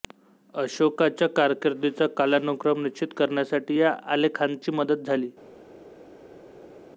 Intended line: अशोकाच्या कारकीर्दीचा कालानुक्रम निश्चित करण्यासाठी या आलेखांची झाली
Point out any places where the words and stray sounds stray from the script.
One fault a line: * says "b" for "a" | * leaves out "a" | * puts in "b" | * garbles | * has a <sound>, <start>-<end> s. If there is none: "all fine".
* puts in "मदत"